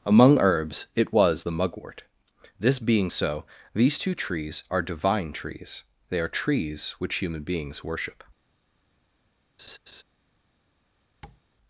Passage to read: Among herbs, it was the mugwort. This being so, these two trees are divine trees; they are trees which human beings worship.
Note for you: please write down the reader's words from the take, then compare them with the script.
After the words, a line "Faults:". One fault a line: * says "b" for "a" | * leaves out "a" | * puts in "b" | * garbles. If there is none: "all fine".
Among herbs, it was the mugwort. This being so, these two trees are divine trees; they are trees which human beings worship.
Faults:
all fine